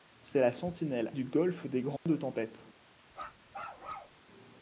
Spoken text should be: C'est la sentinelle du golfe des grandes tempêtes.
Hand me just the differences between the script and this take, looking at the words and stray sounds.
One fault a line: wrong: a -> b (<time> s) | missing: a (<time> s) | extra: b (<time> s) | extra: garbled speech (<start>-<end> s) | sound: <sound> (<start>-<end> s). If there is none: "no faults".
sound: dropout (2.0-2.1 s)
sound: bark (3.1-4.2 s)